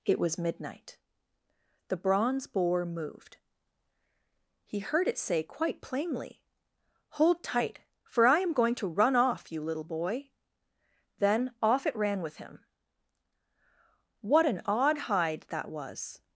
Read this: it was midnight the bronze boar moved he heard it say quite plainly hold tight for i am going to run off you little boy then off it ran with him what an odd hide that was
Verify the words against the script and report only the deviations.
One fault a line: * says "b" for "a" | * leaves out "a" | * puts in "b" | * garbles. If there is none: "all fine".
all fine